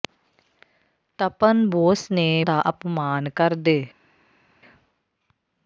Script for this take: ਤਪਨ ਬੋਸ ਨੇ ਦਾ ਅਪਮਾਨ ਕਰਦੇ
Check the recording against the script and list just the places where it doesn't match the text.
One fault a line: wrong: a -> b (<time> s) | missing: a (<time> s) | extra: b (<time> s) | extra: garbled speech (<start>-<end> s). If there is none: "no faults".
no faults